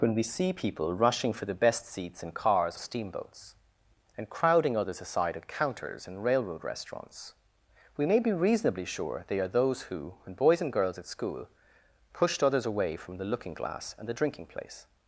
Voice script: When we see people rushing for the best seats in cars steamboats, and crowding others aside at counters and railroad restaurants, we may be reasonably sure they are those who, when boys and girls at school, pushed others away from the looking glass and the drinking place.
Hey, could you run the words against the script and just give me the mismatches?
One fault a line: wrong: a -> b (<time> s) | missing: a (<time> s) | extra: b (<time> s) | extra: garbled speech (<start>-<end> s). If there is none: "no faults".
no faults